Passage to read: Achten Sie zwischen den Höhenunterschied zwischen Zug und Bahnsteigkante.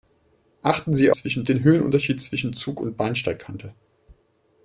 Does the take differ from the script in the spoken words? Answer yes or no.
no